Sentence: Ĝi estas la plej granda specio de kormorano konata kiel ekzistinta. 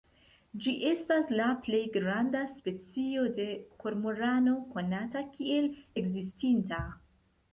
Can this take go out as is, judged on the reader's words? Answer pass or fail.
pass